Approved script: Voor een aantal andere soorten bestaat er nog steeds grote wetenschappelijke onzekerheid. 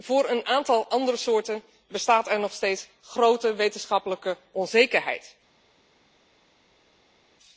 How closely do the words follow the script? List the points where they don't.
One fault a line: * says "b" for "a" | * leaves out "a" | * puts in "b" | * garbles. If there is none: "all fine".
all fine